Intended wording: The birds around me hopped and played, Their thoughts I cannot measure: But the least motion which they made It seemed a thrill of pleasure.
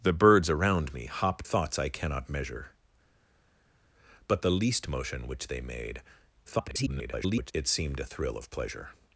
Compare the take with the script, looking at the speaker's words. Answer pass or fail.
fail